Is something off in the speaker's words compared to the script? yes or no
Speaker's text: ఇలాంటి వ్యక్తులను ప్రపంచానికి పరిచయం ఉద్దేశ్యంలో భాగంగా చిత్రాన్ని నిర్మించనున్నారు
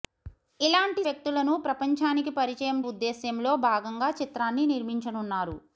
no